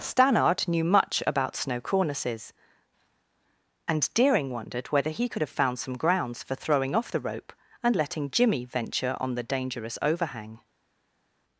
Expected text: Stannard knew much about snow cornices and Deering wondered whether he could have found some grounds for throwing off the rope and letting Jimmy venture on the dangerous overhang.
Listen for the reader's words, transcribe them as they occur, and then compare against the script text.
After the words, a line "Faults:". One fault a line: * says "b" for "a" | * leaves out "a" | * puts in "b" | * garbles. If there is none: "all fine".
Stannard knew much about snow cornices and Deering wondered whether he could have found some grounds for throwing off the rope and letting Jimmy venture on the dangerous overhang.
Faults:
all fine